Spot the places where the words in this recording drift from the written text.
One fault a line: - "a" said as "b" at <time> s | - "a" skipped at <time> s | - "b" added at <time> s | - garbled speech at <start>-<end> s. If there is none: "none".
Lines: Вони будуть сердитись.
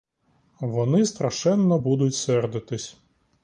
- "страшенно" added at 1.0 s